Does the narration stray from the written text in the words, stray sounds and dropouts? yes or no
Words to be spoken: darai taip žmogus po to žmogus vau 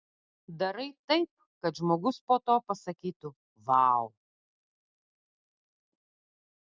yes